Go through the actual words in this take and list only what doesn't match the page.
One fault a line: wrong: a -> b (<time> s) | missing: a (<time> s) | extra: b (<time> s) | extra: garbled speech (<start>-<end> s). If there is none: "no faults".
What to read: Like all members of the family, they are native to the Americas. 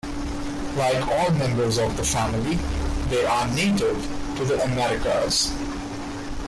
no faults